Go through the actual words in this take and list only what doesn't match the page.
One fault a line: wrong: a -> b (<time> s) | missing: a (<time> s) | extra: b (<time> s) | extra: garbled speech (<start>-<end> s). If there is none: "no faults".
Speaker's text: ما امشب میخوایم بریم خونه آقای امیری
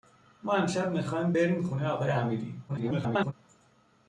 extra: garbled speech (2.7-3.3 s)